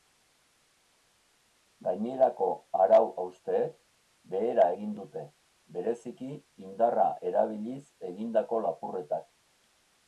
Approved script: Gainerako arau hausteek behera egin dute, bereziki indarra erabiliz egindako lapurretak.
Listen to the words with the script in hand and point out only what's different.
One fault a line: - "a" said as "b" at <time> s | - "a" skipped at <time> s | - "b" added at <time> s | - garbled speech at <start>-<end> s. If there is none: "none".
none